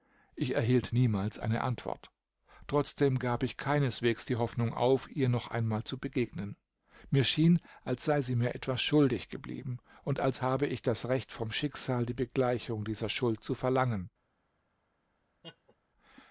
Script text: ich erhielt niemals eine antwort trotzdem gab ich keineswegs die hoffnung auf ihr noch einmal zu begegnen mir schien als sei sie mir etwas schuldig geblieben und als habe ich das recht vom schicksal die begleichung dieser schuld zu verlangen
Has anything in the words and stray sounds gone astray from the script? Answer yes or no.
yes